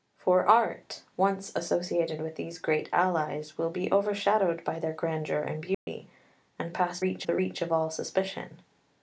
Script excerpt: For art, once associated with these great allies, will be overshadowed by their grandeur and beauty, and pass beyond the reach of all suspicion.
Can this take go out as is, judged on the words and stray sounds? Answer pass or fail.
fail